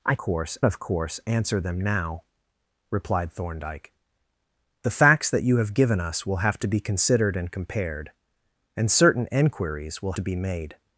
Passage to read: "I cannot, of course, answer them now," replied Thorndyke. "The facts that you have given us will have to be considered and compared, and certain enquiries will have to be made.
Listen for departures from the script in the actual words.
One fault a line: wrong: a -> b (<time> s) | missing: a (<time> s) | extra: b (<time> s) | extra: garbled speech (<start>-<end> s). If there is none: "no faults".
wrong: cannot -> course (0.2 s)
missing: have (10.1 s)